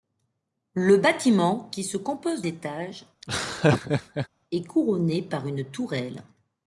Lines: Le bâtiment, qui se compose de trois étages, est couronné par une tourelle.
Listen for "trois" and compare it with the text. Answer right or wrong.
wrong